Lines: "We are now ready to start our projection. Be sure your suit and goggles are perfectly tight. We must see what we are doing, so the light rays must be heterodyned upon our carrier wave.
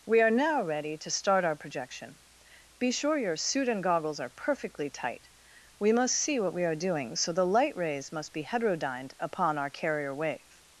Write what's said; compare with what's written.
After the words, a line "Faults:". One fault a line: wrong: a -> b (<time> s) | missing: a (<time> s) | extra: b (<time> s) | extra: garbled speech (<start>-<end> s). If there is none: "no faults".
"We are now ready to start our projection. Be sure your suit and goggles are perfectly tight. We must see what we are doing, so the light rays must be heterodyned upon our carrier wave.
Faults:
no faults